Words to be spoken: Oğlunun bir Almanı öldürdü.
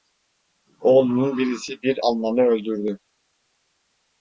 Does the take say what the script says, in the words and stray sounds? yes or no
no